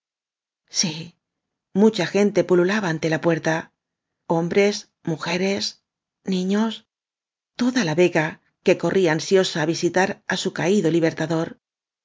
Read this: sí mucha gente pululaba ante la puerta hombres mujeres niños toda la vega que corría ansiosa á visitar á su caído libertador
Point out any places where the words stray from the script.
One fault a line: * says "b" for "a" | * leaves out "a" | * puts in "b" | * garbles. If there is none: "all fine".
all fine